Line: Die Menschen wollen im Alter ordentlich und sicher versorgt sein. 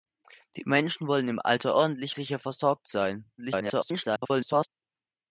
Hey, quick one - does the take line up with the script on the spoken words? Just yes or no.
no